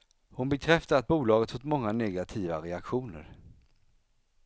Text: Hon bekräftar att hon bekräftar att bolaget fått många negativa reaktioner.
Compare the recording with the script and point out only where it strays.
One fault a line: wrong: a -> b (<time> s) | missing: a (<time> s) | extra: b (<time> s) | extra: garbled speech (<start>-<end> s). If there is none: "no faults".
missing: hon bekräftar att (1.1 s)